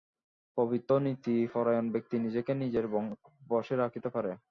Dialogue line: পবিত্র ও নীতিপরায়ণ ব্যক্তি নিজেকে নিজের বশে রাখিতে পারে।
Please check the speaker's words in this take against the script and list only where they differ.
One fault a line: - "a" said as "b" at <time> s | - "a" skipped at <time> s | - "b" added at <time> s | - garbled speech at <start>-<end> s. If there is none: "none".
none